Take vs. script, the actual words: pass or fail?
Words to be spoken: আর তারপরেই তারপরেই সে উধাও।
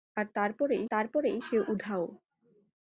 pass